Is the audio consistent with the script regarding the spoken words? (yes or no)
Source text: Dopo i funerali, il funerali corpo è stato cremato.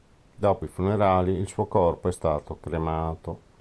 no